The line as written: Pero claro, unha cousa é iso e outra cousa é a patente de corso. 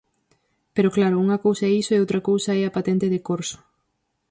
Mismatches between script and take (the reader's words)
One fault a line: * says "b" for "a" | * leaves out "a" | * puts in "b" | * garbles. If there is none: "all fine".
all fine